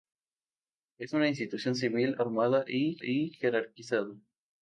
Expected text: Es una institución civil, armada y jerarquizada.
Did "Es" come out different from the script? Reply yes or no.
no